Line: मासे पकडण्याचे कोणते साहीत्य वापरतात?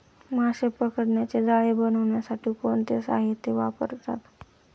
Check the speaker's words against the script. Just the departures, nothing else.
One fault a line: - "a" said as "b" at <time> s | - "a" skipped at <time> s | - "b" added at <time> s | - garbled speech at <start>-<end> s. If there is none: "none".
- "जाळे बनवण्यासाठी" added at 1.4 s